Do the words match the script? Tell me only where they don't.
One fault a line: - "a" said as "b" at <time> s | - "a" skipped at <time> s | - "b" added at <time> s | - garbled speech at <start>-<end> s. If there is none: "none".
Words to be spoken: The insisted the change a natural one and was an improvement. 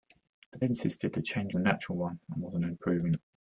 none